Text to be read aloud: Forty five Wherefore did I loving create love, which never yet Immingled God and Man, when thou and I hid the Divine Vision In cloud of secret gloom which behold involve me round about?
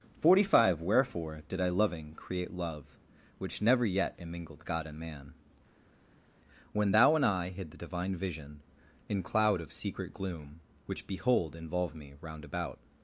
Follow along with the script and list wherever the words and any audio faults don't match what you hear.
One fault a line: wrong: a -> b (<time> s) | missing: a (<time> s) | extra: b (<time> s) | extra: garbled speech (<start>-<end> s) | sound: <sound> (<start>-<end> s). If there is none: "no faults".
no faults